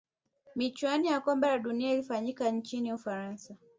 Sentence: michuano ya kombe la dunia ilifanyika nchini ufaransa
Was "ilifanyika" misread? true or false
false